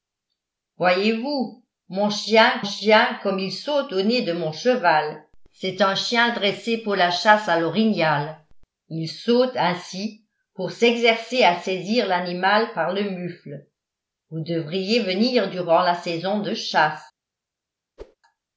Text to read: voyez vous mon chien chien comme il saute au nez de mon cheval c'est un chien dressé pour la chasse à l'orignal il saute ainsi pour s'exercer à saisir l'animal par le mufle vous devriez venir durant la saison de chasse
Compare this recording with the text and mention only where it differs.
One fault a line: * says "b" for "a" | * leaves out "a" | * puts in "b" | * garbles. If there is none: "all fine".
all fine